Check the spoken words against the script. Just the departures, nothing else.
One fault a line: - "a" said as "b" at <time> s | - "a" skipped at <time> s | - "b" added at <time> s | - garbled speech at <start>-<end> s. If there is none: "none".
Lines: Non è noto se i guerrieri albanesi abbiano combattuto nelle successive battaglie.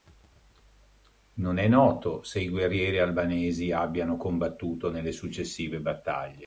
none